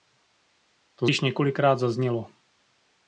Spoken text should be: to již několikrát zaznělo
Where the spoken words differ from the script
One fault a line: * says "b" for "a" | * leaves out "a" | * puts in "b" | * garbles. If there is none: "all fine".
all fine